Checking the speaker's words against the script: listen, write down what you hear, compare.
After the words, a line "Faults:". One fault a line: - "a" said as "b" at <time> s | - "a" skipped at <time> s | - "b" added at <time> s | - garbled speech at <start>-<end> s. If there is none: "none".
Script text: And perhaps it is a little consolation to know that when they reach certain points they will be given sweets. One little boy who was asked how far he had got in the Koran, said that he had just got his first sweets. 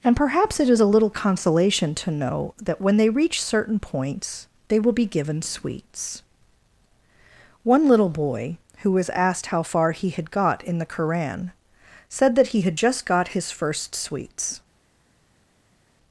And perhaps it is a little consolation to know that when they reach certain points they will be given sweets. One little boy who was asked how far he had got in the Koran, said that he had just got his first sweets.
Faults:
none